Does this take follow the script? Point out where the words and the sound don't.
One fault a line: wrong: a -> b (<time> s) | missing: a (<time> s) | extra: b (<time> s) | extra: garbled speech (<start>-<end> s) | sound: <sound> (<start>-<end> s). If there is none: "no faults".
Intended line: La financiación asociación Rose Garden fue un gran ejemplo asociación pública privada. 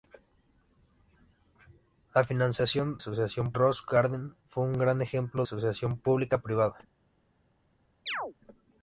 sound: chirp (8.1-8.3 s)